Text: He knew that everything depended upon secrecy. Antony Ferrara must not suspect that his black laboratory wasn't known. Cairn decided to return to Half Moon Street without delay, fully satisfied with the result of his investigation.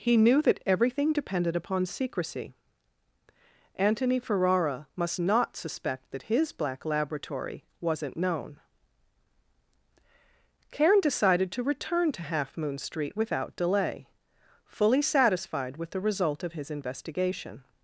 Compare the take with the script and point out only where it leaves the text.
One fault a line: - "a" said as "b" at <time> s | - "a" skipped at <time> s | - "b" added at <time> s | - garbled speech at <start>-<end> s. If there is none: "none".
none